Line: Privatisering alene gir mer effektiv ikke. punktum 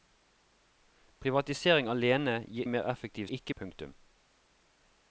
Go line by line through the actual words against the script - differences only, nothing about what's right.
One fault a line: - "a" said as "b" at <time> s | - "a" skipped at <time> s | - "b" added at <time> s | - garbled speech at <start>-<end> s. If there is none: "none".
none